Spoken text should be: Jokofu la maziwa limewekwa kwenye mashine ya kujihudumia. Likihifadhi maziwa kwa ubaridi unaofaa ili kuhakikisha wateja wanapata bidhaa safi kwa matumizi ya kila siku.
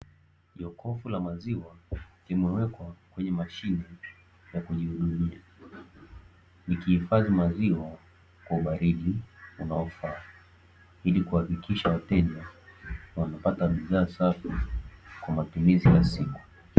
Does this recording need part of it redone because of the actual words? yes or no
yes